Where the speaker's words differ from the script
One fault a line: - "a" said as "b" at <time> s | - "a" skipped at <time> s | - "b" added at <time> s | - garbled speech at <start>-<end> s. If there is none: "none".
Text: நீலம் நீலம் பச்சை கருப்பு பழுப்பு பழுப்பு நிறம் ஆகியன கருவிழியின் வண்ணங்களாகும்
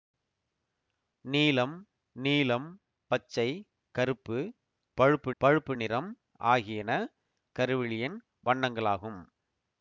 none